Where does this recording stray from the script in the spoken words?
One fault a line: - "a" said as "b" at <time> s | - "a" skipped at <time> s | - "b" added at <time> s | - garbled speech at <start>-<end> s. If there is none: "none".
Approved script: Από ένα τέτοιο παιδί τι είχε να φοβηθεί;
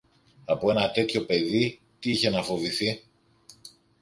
none